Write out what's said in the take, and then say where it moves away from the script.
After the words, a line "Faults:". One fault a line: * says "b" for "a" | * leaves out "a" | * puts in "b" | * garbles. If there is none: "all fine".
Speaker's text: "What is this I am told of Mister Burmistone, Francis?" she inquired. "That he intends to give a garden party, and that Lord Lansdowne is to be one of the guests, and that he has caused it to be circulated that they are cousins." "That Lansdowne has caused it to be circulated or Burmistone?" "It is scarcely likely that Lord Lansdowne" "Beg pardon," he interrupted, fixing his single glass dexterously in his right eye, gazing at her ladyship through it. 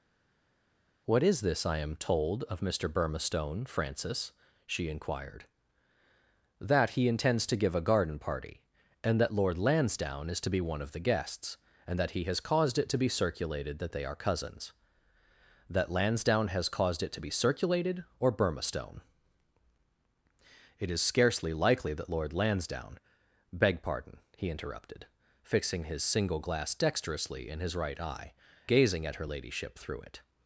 "What is this I am told of Mister Burmistone, Francis?" she inquired. "That he intends to give a garden party, and that Lord Lansdowne is to be one of the guests, and that he has caused it to be circulated that they are cousins." "That Lansdowne has caused it to be circulated or Burmistone?" "It is scarcely likely that Lord Lansdowne" "Beg pardon," he interrupted, fixing his single glass dexterously in his right eye, gazing at her ladyship through it.
Faults:
all fine